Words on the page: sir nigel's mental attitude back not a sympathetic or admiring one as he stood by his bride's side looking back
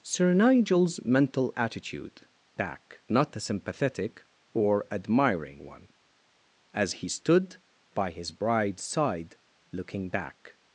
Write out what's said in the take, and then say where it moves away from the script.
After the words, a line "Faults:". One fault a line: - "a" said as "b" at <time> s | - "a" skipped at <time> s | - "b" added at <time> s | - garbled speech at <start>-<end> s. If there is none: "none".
sir nigel's mental attitude back not a sympathetic or admiring one as he stood by his bride's side looking back
Faults:
none